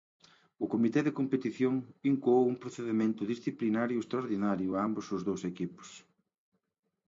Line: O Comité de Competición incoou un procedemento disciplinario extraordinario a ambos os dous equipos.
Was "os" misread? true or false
false